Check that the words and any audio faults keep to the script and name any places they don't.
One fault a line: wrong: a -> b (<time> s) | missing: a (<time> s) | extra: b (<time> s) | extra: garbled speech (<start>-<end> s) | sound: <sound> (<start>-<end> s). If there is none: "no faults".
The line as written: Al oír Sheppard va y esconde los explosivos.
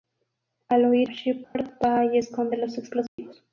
sound: dropout (1.4-1.6 s)
sound: dropout (3.1-3.2 s)